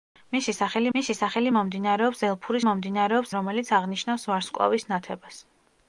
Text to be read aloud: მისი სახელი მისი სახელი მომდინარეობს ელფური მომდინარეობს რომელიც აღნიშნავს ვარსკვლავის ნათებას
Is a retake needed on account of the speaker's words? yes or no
no